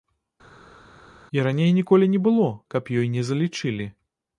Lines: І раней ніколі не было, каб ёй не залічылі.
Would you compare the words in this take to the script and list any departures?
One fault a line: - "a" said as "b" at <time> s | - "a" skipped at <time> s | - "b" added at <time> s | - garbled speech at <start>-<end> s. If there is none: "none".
none